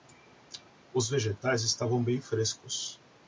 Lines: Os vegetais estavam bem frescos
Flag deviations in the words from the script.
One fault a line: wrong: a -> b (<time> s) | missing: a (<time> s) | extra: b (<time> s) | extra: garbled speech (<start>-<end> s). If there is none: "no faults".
no faults